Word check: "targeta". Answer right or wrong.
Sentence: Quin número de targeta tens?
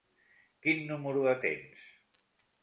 wrong